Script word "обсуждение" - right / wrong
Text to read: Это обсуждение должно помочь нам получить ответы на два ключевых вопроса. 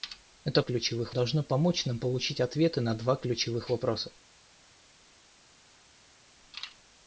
wrong